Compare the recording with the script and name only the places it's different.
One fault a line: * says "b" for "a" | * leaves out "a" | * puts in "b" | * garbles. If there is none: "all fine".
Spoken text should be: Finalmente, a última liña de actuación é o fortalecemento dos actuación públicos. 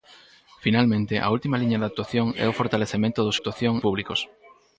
all fine